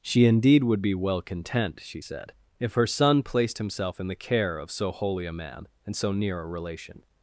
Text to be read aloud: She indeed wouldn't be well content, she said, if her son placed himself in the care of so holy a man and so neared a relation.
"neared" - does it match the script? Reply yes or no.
no